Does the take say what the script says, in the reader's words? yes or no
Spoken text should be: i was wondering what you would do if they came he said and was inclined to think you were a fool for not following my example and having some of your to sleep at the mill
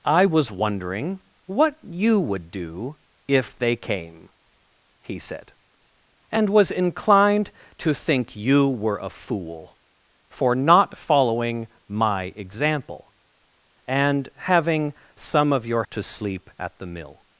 yes